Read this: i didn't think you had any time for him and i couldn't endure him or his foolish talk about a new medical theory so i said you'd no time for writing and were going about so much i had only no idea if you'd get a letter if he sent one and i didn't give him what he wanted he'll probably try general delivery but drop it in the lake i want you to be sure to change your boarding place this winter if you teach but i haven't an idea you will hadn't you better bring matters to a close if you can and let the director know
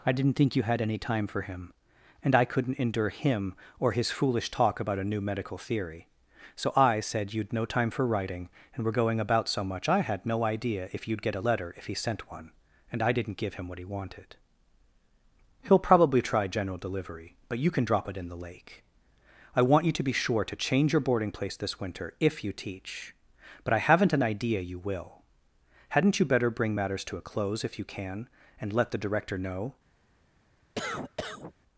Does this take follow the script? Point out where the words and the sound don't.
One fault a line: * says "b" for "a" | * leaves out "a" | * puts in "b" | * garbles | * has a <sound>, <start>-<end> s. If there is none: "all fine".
* leaves out "only"
* puts in "you can"
* has a cough, 30.8-31.5 s